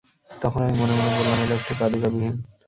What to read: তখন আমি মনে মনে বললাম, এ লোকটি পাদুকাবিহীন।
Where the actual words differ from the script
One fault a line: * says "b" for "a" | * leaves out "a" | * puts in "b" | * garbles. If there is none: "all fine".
all fine